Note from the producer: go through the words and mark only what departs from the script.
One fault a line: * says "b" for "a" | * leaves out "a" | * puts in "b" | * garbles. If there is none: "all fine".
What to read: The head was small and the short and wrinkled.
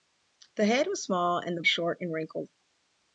all fine